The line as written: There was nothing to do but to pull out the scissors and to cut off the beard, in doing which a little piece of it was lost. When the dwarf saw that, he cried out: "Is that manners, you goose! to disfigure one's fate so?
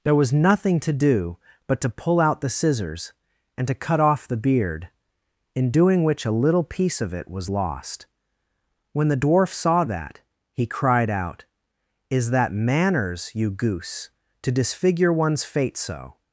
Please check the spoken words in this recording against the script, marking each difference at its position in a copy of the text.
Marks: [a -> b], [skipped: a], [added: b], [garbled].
There was nothing to do but to pull out the scissors and to cut off the beard, in doing which a little piece of it was lost. When the dwarf saw that, he cried out: "Is that manners, you goose! to disfigure one's fate so?